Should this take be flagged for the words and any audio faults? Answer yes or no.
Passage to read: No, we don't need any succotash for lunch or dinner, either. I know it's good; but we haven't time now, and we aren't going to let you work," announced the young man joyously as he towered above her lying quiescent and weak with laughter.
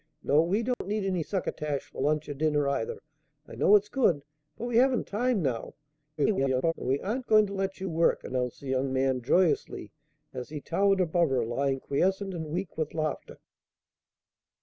yes